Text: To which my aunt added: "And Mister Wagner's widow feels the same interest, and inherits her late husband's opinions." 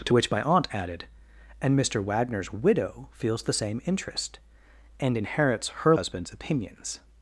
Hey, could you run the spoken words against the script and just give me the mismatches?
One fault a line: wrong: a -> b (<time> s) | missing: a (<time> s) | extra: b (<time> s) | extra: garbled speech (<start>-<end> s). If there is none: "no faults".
missing: late (5.9 s)